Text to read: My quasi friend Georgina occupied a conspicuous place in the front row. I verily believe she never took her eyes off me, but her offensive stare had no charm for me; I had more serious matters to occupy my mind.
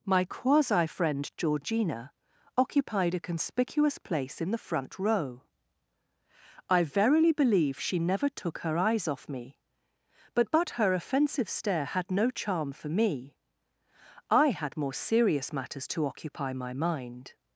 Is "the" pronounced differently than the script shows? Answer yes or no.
no